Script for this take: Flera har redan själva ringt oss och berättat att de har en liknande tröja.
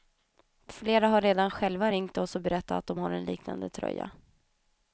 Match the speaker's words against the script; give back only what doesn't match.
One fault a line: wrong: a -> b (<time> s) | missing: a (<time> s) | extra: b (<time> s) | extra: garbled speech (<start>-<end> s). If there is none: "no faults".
no faults